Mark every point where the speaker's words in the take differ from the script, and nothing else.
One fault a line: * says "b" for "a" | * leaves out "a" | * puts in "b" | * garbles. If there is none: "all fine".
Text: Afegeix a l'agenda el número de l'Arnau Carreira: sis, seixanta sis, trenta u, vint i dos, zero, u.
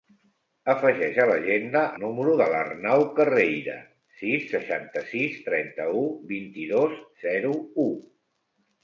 * leaves out "el"